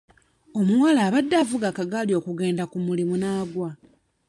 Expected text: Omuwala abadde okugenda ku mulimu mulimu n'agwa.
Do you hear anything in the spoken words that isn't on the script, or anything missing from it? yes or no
yes